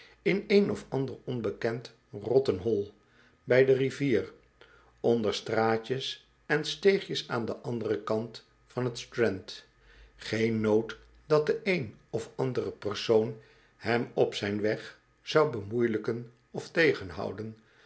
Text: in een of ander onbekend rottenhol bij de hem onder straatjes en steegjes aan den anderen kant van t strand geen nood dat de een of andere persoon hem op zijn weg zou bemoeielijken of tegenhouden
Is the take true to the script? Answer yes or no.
no